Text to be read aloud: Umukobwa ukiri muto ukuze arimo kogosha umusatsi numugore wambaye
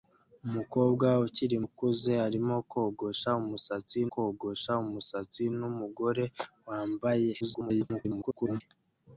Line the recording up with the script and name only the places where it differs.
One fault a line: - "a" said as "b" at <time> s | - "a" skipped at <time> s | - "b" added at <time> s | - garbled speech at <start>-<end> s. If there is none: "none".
- "muto" skipped at 1.6 s
- "kogosha umusatsi" added at 4.1 s
- garbled speech at 7.4-8.6 s